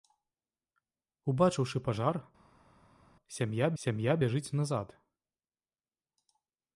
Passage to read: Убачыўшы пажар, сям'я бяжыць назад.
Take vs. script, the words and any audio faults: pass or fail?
fail